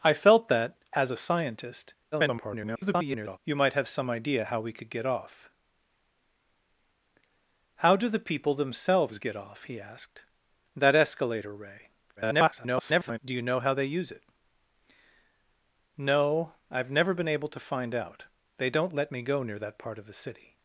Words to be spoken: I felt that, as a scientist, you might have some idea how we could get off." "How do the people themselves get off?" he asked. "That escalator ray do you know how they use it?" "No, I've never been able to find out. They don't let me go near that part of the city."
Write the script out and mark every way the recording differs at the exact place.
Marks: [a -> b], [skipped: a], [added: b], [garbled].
I felt that, as a scientist, [garbled] you might have some idea how we could get off." "How do the people themselves get off?" he asked. "That escalator ray [garbled] do you know how they use it?" "No, I've never been able to find out. They don't let me go near that part of the city."